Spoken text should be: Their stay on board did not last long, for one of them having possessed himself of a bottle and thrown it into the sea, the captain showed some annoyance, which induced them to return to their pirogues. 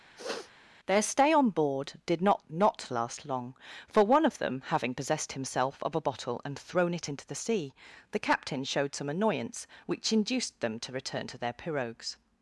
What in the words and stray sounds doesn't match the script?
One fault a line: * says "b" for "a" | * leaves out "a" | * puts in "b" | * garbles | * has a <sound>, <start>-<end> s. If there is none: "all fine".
* has a sniff, 0.2-0.5 s
* puts in "not"